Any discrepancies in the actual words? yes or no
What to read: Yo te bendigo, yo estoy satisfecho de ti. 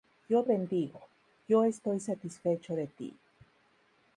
yes